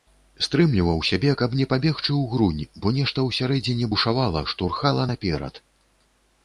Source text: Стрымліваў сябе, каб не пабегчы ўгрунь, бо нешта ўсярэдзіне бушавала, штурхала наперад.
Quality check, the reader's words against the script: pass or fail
pass